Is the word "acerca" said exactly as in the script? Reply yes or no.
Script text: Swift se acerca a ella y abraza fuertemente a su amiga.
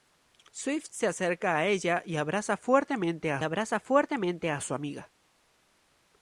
yes